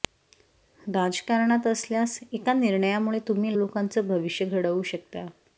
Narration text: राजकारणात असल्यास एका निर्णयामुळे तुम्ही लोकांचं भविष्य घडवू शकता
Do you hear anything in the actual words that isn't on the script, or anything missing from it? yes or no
no